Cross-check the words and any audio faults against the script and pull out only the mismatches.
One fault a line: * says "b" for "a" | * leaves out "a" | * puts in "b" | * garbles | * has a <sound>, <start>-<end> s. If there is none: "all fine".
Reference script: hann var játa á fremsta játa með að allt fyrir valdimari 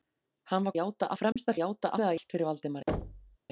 * has a dropout, 1.3-1.4 s
* has a thud, 2.9-3.4 s